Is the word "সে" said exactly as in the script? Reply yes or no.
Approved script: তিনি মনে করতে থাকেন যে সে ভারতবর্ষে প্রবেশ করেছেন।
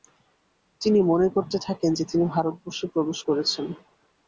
no